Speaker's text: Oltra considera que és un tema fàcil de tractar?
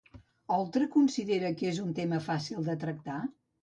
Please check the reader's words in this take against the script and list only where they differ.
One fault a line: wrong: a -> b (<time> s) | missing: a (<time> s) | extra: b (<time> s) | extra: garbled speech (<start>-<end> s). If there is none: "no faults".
no faults